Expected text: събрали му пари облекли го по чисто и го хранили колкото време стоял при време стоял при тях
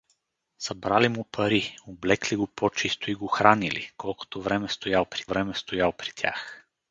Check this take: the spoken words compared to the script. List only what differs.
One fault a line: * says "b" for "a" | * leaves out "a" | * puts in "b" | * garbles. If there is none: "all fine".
all fine